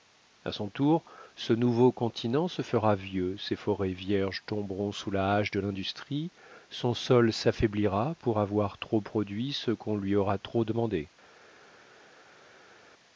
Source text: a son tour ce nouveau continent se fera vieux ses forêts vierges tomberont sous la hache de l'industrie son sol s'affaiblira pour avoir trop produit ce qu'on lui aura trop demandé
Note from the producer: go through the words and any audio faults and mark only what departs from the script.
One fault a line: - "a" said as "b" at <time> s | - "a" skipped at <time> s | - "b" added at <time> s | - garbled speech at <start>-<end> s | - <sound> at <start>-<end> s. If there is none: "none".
none